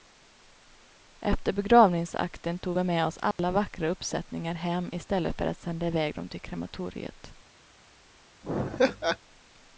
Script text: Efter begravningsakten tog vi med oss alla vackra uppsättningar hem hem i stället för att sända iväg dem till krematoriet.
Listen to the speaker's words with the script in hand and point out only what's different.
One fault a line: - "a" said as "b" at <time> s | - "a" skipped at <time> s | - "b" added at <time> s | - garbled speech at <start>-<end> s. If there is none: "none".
- "hem" skipped at 4.9 s